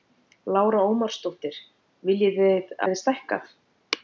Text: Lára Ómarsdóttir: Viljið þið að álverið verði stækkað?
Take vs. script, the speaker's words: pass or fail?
fail